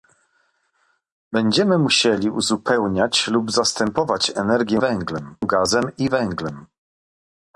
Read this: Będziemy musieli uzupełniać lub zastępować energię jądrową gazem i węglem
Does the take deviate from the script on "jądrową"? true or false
true